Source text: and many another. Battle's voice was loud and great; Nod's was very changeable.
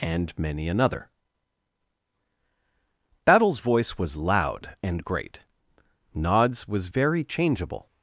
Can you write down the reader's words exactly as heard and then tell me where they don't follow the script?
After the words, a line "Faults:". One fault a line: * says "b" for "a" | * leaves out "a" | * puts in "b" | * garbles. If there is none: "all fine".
and many another. Battle's voice was loud and great; Nod's was very changeable.
Faults:
all fine